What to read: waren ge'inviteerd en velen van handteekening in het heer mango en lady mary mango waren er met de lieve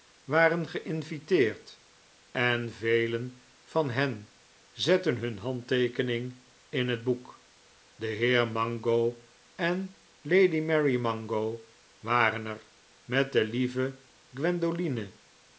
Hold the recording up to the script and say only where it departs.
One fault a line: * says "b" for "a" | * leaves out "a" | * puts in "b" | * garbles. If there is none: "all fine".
* puts in "hen zetten hun"
* puts in "boek de"